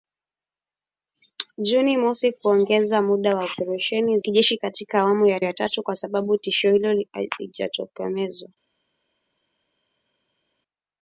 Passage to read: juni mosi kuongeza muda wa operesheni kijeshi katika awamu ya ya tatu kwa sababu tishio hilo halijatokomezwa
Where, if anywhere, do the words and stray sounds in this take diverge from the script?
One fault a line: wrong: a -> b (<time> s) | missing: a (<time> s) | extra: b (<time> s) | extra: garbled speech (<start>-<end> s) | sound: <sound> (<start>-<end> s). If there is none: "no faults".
no faults